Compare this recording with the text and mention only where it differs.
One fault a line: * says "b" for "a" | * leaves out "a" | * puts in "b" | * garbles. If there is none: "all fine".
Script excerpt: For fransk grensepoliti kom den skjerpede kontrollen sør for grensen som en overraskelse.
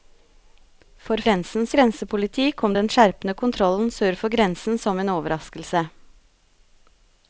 * says "grensen" for "fransk"